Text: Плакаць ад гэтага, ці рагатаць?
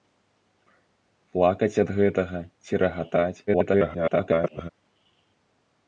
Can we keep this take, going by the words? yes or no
no